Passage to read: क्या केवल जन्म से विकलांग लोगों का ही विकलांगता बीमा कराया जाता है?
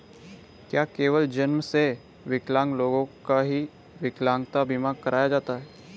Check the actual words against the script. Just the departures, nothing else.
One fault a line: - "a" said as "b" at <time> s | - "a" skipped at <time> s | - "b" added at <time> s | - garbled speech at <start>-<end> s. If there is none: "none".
none